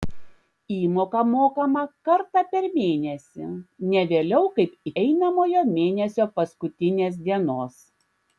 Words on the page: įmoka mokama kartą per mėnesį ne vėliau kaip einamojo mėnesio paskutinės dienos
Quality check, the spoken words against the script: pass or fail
pass